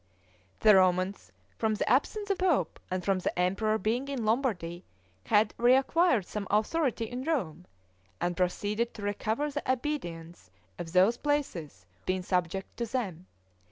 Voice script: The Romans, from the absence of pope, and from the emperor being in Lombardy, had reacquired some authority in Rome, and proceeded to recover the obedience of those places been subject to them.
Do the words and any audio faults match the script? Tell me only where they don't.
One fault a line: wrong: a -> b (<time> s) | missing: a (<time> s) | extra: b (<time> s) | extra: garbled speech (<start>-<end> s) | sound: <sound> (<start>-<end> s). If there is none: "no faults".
no faults